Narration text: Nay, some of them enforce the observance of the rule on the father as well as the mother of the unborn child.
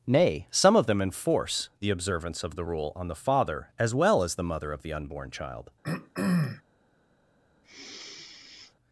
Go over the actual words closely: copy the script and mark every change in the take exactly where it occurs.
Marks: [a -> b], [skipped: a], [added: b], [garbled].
Nay, some of them enforce the observance of the rule on the father as well as the mother of the unborn child.